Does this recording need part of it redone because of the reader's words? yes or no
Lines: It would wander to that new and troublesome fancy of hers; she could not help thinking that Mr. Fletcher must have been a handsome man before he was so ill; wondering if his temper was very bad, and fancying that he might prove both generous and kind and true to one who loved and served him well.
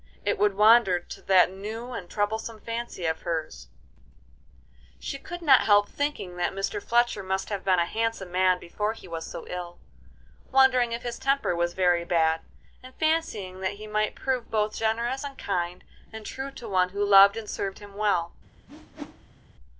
no